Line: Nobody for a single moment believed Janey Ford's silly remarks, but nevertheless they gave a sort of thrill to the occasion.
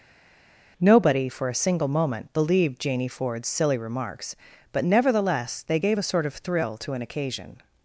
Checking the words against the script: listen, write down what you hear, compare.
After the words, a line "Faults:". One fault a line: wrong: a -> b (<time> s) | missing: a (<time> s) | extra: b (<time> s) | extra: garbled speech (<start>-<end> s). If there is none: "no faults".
Nobody for a single moment believed Janey Ford's silly remarks, but nevertheless they gave a sort of thrill to an occasion.
Faults:
wrong: the -> an (6.9 s)